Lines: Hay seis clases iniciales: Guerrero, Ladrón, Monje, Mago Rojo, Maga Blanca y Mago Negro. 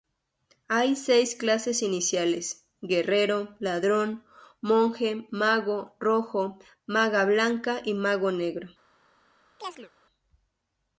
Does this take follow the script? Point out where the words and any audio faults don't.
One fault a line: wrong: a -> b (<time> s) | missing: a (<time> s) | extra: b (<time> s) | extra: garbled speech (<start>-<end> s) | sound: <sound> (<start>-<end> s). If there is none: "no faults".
sound: chirp (9.6-9.9 s)